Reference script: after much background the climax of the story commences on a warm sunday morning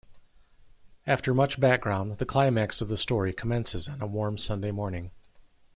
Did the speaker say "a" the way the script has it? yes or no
yes